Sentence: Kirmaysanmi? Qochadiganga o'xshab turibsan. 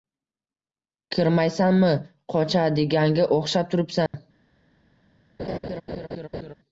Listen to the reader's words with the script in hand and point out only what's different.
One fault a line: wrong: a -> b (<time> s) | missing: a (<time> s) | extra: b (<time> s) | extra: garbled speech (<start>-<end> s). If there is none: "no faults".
no faults